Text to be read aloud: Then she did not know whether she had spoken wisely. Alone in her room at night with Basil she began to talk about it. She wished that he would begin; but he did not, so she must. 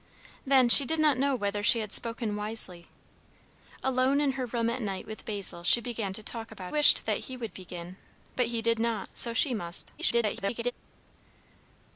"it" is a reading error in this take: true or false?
true